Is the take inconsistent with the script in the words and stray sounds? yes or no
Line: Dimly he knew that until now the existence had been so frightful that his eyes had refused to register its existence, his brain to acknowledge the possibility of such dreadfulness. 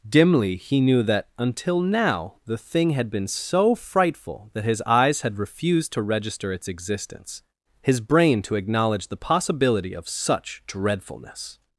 yes